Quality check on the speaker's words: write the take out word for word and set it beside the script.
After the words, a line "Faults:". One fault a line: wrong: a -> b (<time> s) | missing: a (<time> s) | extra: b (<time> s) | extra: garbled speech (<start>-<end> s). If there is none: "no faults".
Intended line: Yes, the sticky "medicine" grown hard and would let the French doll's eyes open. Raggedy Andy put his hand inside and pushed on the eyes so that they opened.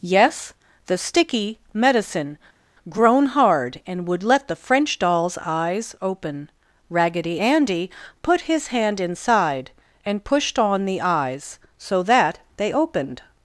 Yes, the sticky "medicine" grown hard and would let the French doll's eyes open. Raggedy Andy put his hand inside and pushed on the eyes so that they opened.
Faults:
no faults